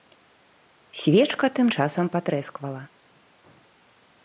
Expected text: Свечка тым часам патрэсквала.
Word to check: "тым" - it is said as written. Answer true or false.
true